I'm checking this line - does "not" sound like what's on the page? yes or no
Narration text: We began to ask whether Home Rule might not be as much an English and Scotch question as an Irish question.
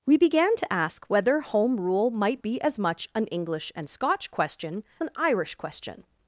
no